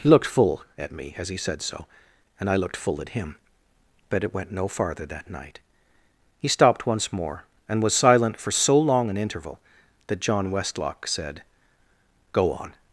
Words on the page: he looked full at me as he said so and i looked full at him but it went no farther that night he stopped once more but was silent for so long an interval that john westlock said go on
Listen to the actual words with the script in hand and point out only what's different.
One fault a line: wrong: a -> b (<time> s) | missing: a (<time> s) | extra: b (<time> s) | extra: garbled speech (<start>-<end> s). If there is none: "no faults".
wrong: but -> and (7.7 s)